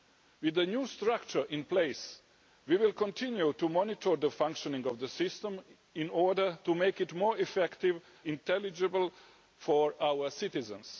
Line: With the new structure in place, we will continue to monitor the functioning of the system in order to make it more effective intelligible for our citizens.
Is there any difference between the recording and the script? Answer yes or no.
no